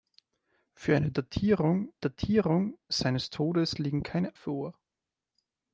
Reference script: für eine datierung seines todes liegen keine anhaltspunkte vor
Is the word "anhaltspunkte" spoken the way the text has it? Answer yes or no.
no